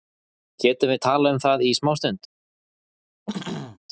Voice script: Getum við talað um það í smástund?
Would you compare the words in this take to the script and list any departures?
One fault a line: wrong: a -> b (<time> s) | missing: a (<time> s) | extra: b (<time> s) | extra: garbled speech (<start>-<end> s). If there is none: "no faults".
no faults